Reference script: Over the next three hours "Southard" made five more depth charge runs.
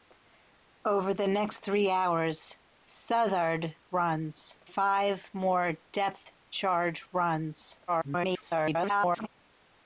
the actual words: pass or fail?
fail